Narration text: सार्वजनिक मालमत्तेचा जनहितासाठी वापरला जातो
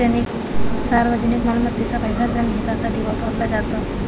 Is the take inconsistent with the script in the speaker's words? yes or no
yes